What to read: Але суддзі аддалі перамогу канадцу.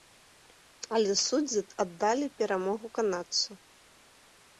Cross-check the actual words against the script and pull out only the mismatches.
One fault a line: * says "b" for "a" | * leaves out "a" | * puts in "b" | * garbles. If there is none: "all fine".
all fine